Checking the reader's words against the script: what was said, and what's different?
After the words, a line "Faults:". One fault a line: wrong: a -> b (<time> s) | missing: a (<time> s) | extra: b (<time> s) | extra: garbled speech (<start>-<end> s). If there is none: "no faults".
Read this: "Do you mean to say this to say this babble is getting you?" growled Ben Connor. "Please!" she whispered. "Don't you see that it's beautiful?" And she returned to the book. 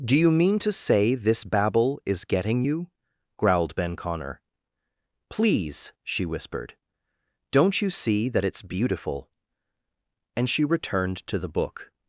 "Do you mean to say this babble is getting you?" growled Ben Connor. "Please!" she whispered. "Don't you see that it's beautiful?" And she returned to the book.
Faults:
missing: to say this (1.4 s)